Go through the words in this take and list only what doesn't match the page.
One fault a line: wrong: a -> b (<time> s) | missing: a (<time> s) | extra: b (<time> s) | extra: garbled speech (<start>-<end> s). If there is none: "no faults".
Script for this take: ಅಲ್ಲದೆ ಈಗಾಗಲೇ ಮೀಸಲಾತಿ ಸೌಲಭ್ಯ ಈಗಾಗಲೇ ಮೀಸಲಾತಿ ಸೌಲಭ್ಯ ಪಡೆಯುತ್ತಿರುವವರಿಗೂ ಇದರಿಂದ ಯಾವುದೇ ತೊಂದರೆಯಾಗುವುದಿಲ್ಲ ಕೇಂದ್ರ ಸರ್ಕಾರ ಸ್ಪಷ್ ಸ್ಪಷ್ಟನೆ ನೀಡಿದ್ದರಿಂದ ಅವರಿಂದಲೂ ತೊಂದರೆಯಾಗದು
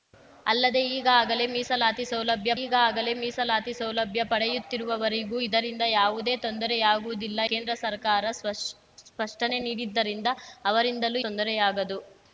no faults